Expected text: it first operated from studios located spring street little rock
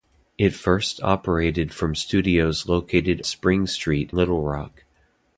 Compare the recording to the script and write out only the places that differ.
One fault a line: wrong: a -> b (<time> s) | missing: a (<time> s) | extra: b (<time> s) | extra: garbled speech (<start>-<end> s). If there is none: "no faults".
no faults